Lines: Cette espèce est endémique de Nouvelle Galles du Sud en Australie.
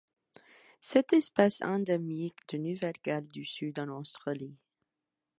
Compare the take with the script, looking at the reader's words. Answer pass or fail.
fail